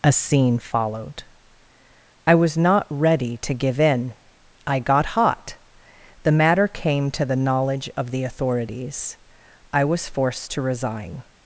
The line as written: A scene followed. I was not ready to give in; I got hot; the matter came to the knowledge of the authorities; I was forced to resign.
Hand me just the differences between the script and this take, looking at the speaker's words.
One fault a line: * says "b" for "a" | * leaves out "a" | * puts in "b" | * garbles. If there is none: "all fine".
all fine